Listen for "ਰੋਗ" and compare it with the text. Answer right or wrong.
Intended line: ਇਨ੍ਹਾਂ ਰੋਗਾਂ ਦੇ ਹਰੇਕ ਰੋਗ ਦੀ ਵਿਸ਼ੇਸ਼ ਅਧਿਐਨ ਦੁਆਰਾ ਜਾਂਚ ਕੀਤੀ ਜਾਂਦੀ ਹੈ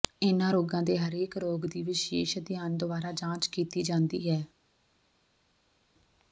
right